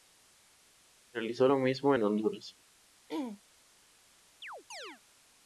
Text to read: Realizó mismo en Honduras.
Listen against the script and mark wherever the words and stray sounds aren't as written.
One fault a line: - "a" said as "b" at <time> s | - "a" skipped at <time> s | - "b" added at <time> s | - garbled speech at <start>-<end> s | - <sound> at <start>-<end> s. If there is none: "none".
- "lo" added at 1.4 s
- throat clearing at 3.1-3.4 s
- chirp at 4.4-5.0 s